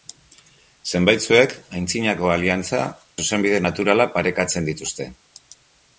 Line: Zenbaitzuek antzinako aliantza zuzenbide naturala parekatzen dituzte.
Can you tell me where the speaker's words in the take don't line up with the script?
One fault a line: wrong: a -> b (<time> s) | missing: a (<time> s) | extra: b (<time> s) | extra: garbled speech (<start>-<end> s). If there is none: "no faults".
no faults